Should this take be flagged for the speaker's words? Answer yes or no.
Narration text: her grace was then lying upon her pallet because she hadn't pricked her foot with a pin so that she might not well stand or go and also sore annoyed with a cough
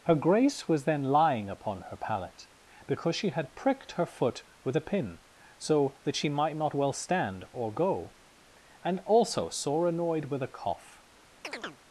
yes